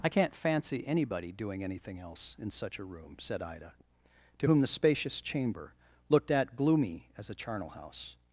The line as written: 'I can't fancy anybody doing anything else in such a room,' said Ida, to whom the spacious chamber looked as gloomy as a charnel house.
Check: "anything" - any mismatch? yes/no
no